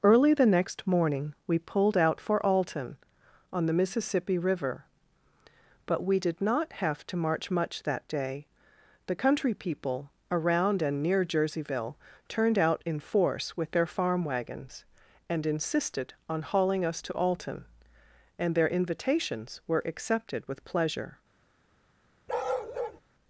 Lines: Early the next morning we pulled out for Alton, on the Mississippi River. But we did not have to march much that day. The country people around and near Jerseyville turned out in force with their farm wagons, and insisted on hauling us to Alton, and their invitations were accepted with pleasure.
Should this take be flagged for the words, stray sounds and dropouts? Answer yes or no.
yes